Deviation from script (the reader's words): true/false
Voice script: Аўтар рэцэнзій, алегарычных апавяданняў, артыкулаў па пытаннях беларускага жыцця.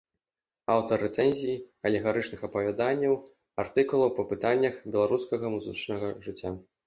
true